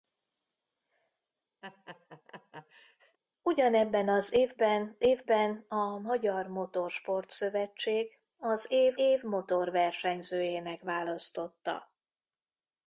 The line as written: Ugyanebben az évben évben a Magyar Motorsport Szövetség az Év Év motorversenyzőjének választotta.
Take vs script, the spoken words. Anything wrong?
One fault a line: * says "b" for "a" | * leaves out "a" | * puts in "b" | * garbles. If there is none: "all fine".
all fine